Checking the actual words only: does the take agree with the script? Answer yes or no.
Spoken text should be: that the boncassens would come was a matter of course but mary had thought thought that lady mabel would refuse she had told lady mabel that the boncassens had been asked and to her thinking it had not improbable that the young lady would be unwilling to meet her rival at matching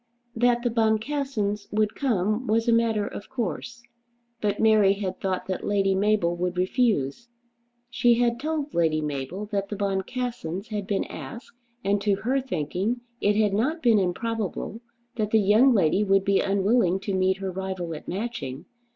no